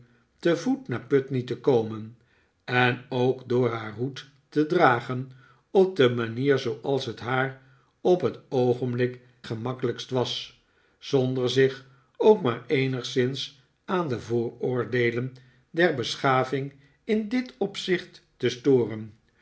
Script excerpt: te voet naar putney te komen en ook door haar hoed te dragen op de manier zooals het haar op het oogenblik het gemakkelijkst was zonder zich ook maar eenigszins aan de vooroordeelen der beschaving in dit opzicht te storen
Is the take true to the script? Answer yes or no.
no